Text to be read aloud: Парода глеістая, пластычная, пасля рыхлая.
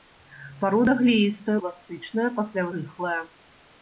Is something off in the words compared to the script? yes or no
no